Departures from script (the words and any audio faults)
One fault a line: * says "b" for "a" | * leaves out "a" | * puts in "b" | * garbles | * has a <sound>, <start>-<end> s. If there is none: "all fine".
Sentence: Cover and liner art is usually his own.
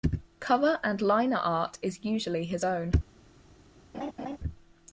* has a laugh, 3.9-4.4 s